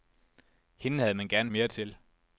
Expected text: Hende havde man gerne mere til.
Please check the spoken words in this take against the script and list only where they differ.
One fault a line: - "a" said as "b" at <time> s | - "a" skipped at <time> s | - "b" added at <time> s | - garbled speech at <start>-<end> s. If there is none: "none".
none